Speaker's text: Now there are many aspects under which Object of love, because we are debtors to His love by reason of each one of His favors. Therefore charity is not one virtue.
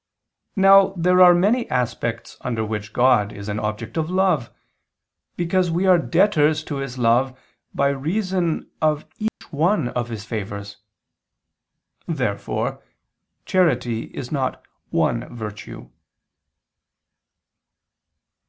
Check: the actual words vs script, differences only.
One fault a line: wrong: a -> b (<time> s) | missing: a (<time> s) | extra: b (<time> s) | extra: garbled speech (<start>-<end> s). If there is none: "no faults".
extra: God is an (2.9 s)